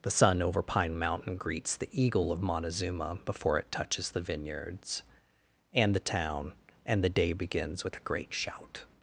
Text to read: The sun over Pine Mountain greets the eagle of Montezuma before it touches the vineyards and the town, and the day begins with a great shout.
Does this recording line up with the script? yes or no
yes